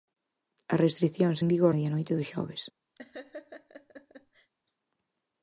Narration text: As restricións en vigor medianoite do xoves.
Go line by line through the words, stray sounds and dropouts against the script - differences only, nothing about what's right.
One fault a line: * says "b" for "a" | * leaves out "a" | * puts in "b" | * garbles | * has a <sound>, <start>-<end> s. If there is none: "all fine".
* has a laugh, 3.0-4.5 s